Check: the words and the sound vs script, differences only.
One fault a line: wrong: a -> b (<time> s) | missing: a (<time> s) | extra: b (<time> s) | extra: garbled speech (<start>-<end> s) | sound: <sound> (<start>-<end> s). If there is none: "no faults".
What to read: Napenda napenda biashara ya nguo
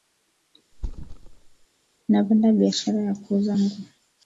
sound: thud (0.7-1.7 s)
missing: napenda (2.5 s)
extra: kuuza (3.1 s)